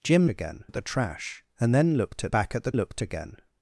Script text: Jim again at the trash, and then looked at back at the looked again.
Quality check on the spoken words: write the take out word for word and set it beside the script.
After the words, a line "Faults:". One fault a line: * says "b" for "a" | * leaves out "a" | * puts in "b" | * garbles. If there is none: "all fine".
Jim again at the trash, and then looked at back at the looked again.
Faults:
all fine